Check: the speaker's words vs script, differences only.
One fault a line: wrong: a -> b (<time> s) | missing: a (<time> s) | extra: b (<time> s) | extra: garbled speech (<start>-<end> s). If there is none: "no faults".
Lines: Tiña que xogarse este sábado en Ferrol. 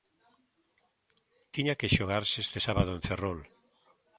no faults